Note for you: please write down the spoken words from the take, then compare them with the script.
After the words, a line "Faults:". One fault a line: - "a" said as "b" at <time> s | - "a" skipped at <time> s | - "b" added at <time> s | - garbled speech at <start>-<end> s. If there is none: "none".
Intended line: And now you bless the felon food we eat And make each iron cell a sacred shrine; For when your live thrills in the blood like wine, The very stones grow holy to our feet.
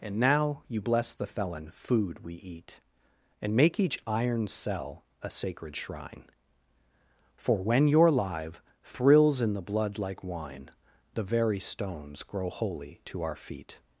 And now you bless the felon food we eat And make each iron cell a sacred shrine; For when your live thrills in the blood like wine, The very stones grow holy to our feet.
Faults:
none